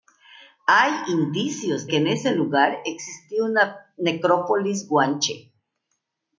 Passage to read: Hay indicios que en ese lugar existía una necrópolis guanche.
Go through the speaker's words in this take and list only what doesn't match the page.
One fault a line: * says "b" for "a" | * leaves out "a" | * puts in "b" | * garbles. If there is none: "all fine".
all fine